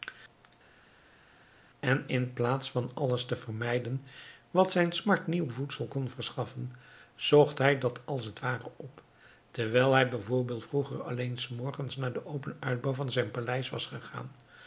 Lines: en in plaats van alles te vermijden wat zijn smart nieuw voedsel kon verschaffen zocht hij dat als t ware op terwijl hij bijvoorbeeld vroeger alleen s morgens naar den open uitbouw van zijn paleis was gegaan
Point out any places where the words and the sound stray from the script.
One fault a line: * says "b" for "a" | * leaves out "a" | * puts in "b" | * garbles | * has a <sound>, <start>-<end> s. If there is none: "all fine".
all fine